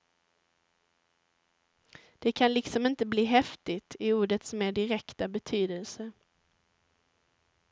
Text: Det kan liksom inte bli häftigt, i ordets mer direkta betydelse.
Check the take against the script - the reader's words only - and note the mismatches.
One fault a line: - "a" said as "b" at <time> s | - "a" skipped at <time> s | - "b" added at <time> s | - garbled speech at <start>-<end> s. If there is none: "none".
none